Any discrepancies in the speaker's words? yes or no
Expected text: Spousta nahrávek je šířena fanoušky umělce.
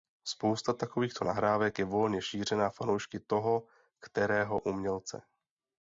yes